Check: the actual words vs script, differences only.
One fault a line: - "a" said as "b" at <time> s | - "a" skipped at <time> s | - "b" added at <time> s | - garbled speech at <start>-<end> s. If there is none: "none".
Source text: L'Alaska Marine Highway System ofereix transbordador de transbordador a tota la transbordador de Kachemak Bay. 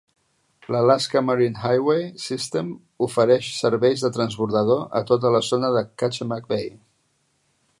- "transbordador" said as "serveis" at 3.6 s
- "transbordador" said as "zona" at 5.5 s